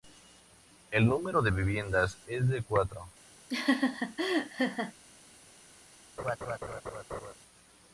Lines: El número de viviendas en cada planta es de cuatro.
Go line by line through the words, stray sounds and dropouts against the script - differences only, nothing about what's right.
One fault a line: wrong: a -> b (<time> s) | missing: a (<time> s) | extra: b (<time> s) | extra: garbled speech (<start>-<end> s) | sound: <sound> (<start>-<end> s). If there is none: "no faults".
missing: en cada planta (2.2 s)
sound: laugh (3.5-4.9 s)
sound: laugh (6.2-7.3 s)